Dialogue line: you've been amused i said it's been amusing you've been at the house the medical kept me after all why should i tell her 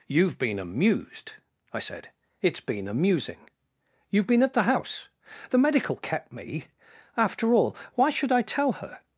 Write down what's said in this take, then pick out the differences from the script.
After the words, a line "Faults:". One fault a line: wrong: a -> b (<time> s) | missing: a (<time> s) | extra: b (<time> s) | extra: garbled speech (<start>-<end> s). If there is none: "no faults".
you've been amused i said it's been amusing you've been at the house the medical kept me after all why should i tell her
Faults:
no faults